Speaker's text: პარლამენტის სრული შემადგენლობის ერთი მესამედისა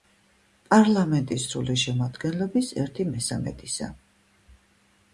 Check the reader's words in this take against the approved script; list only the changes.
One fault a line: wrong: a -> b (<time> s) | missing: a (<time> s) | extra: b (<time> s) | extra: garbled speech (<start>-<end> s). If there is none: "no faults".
no faults